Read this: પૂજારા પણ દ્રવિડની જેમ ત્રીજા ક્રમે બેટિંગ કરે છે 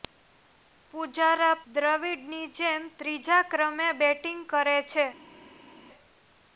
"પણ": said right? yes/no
no